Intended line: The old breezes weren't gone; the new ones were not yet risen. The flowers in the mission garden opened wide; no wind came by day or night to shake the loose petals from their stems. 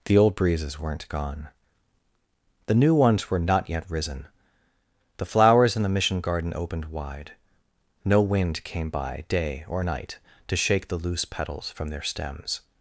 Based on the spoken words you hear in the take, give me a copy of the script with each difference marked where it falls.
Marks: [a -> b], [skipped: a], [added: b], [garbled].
The old breezes weren't gone; the new ones were not yet risen. The flowers in the mission garden opened wide; no wind came by day or night to shake the loose petals from their stems.